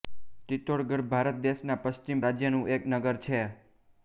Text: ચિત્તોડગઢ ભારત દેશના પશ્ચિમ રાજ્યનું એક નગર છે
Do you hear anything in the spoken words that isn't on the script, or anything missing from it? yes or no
no